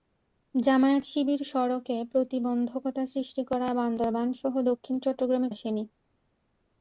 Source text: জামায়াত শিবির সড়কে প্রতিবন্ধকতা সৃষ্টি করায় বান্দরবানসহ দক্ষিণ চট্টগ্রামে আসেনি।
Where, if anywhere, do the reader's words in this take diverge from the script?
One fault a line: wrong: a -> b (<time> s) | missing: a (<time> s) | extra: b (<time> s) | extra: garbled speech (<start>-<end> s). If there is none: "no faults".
no faults